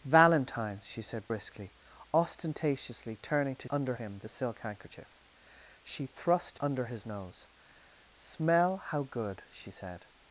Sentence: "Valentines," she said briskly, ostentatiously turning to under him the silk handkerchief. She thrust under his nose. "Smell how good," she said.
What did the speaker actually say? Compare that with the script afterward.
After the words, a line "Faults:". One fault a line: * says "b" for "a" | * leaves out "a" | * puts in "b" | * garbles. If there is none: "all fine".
"Valentines," she said briskly, ostentatiously turning to under him the silk handkerchief. She thrust under his nose. "Smell how good," she said.
Faults:
all fine